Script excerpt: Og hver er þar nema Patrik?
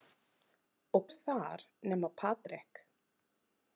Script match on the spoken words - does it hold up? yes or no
no